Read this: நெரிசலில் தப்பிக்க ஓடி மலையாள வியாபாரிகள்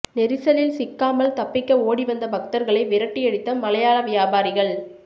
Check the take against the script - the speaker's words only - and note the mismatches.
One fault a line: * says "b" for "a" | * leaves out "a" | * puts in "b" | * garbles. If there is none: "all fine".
* puts in "சிக்காமல்"
* puts in "வந்த பக்தர்களை விரட்டியடித்த"